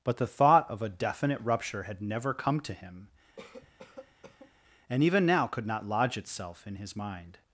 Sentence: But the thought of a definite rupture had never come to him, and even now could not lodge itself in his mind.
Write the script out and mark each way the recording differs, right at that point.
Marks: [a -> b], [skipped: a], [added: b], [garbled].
But the thought of a definite rupture had never come to him, and even now could not lodge itself in his mind.